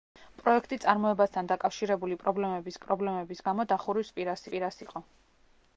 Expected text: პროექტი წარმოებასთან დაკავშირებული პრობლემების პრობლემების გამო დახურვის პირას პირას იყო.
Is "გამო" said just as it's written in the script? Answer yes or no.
yes